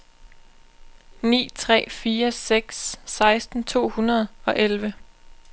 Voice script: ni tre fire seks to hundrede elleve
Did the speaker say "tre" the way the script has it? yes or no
yes